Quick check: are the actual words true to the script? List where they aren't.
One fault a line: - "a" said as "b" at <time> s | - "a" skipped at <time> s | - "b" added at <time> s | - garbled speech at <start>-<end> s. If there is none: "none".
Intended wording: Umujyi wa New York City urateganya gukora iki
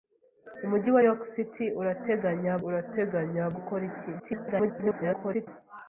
- "New" skipped at 1.0 s
- "urateganya" added at 2.7 s
- garbled speech at 4.2-5.5 s